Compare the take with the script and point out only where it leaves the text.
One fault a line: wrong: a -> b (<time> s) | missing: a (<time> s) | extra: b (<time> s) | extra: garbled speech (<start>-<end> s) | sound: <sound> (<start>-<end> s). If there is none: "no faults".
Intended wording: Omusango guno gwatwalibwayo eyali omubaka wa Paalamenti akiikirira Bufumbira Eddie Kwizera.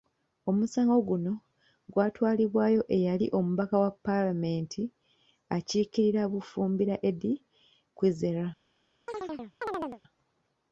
sound: chirp (9.1-10.0 s)